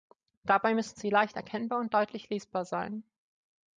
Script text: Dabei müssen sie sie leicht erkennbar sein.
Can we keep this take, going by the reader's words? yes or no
no